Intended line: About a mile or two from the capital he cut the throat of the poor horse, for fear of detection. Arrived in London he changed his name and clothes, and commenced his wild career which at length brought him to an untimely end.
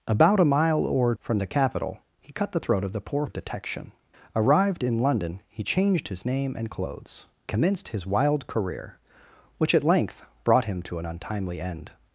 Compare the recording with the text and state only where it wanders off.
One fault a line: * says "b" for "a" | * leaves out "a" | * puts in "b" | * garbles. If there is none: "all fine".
* leaves out "two"
* leaves out "horse for fear"
* leaves out "and"